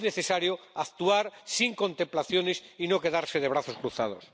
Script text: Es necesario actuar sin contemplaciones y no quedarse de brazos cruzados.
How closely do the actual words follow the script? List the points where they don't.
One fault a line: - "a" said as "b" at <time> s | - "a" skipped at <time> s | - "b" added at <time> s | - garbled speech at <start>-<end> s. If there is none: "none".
none